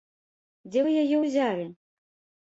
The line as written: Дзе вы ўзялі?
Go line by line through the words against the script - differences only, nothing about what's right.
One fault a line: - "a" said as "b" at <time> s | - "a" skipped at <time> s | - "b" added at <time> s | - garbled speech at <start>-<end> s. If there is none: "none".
- "яе" added at 1.0 s